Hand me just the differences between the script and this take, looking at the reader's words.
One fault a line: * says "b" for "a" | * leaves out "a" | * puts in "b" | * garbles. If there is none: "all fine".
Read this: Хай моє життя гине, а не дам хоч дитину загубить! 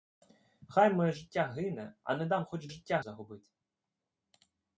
* says "життя" for "дитину"